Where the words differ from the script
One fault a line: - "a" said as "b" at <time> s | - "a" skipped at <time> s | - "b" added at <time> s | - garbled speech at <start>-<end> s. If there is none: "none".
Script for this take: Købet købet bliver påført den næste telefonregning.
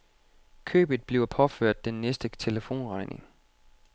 - "købet" skipped at 1.0 s